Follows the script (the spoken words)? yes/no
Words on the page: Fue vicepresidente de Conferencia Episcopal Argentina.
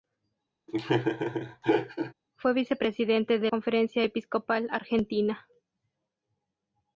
yes